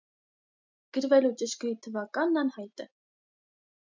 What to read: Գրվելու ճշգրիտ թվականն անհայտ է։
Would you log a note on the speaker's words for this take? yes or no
no